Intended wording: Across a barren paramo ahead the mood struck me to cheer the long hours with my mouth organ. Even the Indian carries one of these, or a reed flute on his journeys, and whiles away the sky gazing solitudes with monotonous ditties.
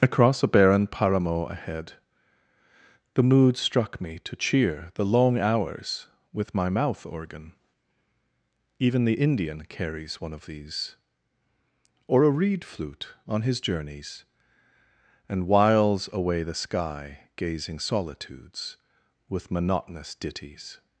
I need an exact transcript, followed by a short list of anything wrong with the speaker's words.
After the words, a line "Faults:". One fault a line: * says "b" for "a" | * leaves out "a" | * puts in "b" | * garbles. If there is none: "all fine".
Across a barren paramo ahead the mood struck me to cheer the long hours with my mouth organ. Even the Indian carries one of these, or a reed flute on his journeys, and whiles away the sky gazing solitudes with monotonous ditties.
Faults:
all fine